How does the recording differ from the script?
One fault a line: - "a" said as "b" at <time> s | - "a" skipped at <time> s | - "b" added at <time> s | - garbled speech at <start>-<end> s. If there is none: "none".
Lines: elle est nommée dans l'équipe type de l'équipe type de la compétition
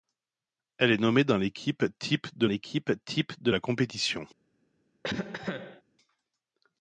none